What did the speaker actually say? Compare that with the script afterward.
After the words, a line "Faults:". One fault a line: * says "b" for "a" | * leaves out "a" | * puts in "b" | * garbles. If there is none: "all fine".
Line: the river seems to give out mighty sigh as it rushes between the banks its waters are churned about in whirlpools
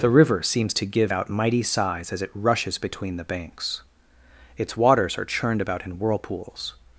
the river seems to give out mighty sighs as it rushes between the banks its waters are churned about in whirlpools
Faults:
* says "sighs" for "sigh"